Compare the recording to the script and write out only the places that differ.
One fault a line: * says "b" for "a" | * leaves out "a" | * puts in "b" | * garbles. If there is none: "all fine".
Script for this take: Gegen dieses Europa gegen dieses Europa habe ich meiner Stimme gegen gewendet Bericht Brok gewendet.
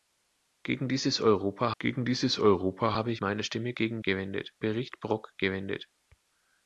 all fine